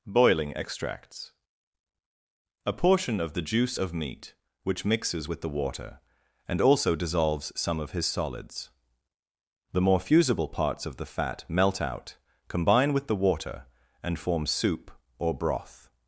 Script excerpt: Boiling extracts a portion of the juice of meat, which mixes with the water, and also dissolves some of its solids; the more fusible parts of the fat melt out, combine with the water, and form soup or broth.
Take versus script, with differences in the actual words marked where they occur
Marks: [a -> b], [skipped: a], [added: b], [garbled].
Boiling extracts a portion of the juice of meat, which mixes with the water, and also dissolves some of [its -> his] solids; the more fusible parts of the fat melt out, combine with the water, and form soup or broth.